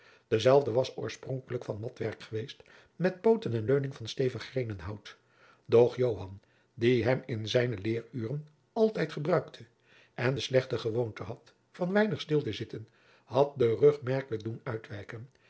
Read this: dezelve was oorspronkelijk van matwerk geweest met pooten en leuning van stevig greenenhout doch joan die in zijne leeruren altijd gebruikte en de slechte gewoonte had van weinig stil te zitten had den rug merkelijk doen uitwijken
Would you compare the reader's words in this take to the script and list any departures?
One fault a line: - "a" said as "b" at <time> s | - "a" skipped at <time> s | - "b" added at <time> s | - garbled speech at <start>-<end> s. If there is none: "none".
- "hem" added at 7.0 s